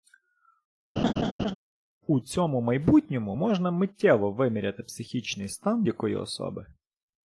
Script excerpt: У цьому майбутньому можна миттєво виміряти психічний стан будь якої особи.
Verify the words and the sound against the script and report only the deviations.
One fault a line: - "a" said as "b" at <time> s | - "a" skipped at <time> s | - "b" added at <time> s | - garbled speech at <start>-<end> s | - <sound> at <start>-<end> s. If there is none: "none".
- laugh at 1.0-1.5 s
- "будь" skipped at 5.8 s